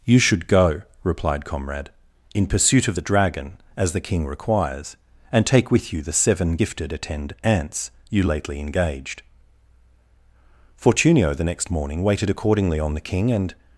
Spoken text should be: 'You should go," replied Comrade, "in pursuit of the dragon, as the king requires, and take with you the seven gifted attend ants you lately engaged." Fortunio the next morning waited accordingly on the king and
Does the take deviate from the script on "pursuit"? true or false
false